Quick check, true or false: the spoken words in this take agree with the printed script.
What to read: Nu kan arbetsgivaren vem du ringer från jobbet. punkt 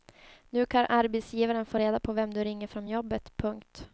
false